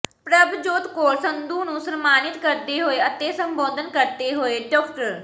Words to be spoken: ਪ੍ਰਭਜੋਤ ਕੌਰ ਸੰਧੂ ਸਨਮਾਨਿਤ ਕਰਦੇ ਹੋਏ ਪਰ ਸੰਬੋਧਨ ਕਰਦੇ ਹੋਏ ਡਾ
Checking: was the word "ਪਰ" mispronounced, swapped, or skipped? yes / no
yes